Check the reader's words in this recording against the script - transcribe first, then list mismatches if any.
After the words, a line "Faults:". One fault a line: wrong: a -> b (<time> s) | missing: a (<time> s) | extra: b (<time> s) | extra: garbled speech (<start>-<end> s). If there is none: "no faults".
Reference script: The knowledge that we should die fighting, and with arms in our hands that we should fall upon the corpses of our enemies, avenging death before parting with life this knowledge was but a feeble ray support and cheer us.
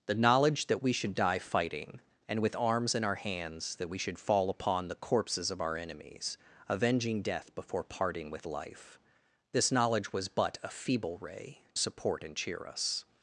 The knowledge that we should die fighting, and with arms in our hands that we should fall upon the corpses of our enemies, avenging death before parting with life this knowledge was but a feeble ray support and cheer us.
Faults:
no faults